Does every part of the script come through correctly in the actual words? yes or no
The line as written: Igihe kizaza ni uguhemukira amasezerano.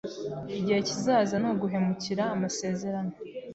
yes